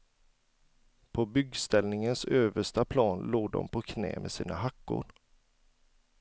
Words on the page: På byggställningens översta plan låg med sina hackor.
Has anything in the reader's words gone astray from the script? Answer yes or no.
yes